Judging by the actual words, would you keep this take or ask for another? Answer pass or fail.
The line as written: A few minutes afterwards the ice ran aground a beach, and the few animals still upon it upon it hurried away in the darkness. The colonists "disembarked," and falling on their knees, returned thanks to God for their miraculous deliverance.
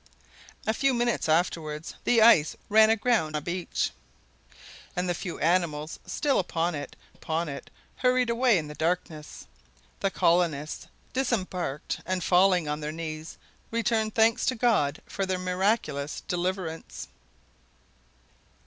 pass